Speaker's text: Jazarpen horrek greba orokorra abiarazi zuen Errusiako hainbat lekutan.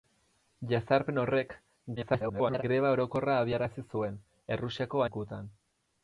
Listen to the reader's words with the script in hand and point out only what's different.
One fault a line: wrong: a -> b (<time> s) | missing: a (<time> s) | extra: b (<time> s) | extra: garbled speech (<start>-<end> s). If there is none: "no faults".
extra: garbled speech (2.0-2.6 s)
missing: hainbat (5.1 s)